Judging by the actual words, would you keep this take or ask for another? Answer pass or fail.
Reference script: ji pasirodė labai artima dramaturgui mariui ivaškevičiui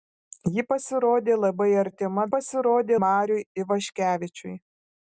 fail